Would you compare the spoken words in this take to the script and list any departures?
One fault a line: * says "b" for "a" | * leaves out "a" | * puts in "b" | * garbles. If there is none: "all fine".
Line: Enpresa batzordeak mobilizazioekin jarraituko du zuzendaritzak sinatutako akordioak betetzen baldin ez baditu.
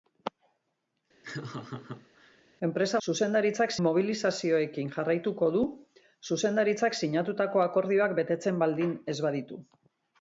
* says "zuzendaritzak" for "batzordeak"